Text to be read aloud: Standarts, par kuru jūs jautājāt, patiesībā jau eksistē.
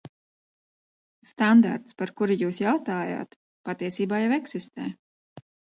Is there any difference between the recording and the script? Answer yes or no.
no